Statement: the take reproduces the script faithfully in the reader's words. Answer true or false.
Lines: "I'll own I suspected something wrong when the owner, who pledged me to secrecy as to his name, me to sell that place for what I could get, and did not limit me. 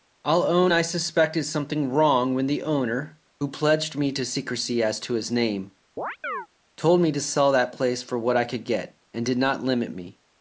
false